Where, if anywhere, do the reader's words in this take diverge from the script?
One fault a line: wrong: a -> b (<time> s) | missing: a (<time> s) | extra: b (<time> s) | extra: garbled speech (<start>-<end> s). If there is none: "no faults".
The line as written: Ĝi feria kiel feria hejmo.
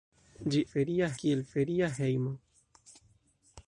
no faults